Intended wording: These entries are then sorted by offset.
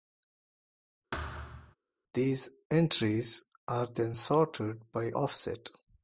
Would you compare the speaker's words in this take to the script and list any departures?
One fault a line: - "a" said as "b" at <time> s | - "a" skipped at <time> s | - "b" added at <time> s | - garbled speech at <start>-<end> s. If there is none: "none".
none